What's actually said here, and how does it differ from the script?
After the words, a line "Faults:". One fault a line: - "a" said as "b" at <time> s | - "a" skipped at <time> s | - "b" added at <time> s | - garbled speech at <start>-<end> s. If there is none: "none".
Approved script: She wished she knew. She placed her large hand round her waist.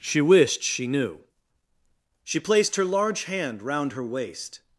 She wished she knew. She placed her large hand round her waist.
Faults:
none